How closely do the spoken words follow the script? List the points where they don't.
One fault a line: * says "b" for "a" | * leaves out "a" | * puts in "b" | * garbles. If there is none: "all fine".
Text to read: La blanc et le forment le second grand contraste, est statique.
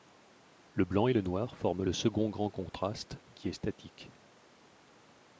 * says "Le" for "La"
* puts in "noir"
* puts in "qui"